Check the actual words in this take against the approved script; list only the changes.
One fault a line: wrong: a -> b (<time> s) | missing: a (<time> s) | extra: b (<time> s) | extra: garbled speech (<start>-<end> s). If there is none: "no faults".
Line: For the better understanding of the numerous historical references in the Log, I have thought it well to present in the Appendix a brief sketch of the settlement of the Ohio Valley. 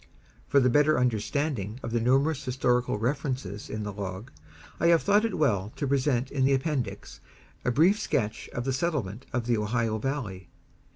no faults